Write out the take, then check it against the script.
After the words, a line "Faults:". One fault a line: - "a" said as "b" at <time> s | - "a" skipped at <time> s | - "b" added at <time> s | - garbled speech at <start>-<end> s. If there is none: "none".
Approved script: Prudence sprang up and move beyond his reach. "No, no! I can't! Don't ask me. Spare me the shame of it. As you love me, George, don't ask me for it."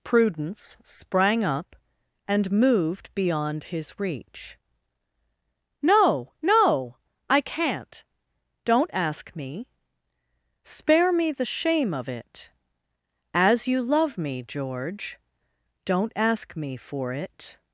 Prudence sprang up and moved beyond his reach. "No, no! I can't! Don't ask me. Spare me the shame of it. As you love me, George, don't ask me for it."
Faults:
- "move" said as "moved" at 2.5 s